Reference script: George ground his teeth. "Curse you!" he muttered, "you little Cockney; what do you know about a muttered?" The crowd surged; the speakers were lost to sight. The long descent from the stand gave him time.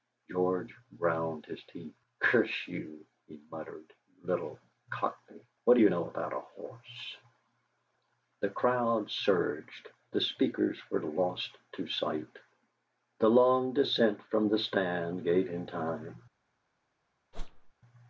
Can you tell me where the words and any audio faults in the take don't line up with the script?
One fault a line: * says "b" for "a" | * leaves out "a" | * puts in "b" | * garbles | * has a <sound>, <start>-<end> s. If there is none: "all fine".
* says "horse" for "muttered"
* has a whoosh, 17.3-17.7 s